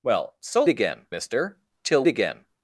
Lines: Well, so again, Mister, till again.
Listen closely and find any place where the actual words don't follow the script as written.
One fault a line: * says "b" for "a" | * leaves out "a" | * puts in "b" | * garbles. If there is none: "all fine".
all fine